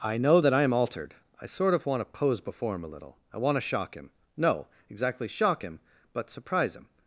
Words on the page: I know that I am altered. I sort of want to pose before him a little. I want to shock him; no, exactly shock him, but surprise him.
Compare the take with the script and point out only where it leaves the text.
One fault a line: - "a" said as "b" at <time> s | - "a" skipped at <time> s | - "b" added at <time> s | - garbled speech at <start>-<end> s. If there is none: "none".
none